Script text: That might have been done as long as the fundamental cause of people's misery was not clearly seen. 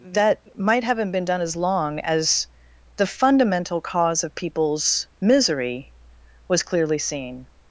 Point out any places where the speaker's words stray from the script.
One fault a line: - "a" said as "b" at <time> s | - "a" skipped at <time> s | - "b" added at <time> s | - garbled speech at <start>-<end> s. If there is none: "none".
- "have" said as "haven't" at 0.8 s
- "not" skipped at 6.6 s